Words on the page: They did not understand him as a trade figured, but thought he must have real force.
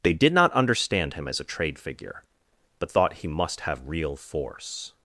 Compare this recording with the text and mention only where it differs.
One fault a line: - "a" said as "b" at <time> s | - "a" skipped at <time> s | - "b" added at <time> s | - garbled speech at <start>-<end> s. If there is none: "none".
- "figured" said as "figure" at 1.8 s